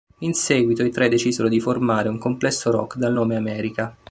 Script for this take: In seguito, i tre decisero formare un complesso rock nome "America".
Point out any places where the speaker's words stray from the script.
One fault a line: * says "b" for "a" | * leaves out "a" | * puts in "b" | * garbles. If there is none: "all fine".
* puts in "di"
* puts in "dal"